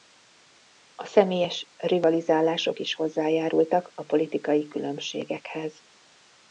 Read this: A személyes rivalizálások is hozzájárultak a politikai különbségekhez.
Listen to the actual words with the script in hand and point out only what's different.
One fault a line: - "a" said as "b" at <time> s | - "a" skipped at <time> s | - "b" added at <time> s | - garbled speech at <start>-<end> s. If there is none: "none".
none